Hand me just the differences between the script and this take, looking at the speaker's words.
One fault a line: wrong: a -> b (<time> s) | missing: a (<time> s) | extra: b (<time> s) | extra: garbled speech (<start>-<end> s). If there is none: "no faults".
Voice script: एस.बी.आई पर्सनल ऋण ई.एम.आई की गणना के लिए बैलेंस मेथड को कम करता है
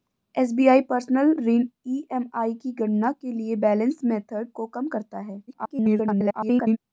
extra: garbled speech (5.5-6.8 s)